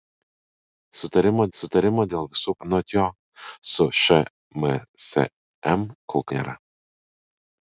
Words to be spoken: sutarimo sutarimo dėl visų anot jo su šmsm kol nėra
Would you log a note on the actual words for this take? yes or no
no